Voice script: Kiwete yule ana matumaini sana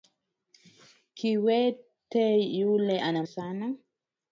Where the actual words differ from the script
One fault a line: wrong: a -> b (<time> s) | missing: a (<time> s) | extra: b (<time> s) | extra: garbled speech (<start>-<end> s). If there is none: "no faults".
missing: matumaini (3.2 s)